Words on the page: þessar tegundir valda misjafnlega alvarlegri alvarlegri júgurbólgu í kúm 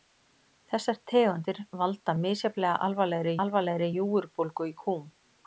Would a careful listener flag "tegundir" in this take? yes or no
no